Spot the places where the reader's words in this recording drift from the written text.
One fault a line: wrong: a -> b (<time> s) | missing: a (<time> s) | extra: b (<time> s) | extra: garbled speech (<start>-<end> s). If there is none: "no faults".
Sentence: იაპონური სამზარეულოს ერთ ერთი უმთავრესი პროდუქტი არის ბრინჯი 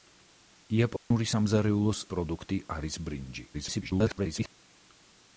missing: ერთ ერთი უმთავრესი (2.0 s)
extra: garbled speech (3.5-4.5 s)